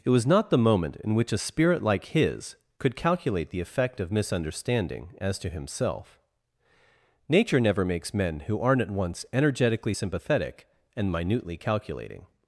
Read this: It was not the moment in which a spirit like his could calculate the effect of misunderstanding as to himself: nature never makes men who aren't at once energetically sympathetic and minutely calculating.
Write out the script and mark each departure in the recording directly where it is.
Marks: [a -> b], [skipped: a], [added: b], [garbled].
It was not the moment in which a spirit like his could calculate the effect of misunderstanding as to himself: nature never makes men who aren't at once energetically sympathetic and minutely calculating.